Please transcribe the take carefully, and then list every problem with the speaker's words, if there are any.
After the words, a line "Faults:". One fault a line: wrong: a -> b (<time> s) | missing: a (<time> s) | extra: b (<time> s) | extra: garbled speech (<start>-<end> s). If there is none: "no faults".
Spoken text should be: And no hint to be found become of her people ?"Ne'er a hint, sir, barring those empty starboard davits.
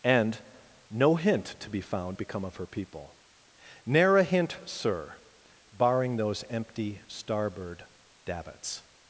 And no hint to be found become of her people ?"Ne'er a hint, sir, barring those empty starboard davits.
Faults:
no faults